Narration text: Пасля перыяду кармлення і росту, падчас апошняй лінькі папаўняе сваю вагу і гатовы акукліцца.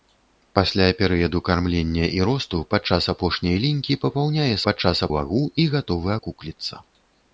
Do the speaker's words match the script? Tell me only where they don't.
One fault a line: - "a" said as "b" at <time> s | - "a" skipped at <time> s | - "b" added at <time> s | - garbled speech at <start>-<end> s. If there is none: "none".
- "сваю" said as "падчас" at 4.7 s